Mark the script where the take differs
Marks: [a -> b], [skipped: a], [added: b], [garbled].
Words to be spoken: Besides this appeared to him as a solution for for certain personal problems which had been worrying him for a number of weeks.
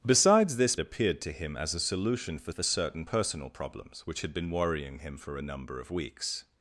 Besides this appeared to him as a solution for for certain personal problems which had been worrying him for a number of weeks.